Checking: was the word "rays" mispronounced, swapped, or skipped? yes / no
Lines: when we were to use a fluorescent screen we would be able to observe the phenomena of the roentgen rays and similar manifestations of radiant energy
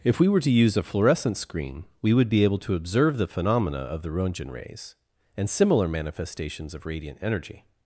no